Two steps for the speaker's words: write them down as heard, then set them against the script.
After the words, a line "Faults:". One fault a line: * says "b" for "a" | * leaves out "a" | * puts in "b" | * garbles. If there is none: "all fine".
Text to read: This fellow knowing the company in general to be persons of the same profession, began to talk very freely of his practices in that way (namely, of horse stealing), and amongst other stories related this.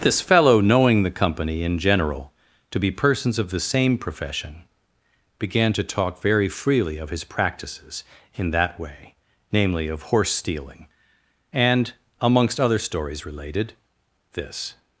This fellow knowing the company in general to be persons of the same profession, began to talk very freely of his practices in that way (namely, of horse stealing), and amongst other stories related this.
Faults:
all fine